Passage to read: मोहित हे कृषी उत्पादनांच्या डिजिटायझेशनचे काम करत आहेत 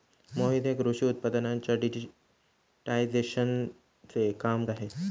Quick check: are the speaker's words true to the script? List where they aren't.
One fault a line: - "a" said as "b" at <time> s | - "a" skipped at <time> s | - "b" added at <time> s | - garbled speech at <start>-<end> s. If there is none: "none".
- "करत" skipped at 4.7 s